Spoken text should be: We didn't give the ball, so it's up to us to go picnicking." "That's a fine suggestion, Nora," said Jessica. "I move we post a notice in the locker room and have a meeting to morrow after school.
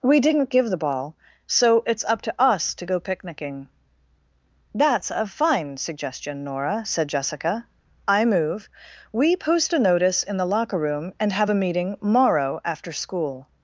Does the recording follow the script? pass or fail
fail